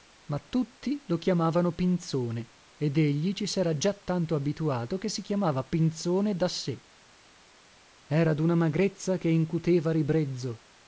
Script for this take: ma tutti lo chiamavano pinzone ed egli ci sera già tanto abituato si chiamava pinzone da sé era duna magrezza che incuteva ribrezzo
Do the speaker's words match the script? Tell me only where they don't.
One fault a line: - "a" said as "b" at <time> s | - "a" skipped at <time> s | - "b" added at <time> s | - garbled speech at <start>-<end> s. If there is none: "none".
- "che" added at 5.0 s